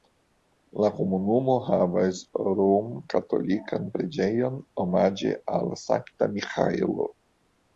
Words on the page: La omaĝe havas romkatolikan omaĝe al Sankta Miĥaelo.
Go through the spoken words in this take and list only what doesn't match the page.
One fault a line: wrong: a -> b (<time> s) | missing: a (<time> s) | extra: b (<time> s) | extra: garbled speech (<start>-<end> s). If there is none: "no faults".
wrong: omaĝe -> komunumo (1.0 s)
extra: preĝejon (4.0 s)